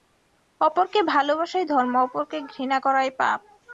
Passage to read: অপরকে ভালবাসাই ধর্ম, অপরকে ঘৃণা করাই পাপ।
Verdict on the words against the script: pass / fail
pass